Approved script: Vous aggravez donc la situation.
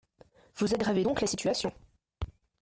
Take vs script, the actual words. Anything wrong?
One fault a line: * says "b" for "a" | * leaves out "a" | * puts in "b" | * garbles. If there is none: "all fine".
all fine